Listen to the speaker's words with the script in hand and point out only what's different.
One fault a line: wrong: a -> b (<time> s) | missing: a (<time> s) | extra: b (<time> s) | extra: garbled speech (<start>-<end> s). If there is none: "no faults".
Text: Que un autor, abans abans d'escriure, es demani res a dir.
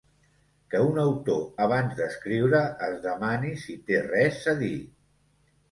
missing: abans (2.0 s)
extra: si té (3.6 s)